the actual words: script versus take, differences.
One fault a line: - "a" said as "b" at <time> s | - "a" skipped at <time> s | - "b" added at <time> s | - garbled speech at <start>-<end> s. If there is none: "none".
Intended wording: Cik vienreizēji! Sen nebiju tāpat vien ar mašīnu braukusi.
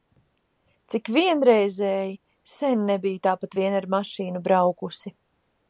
none